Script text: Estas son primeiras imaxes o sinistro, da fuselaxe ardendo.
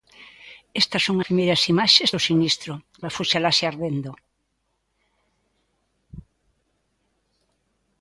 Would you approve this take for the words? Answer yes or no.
yes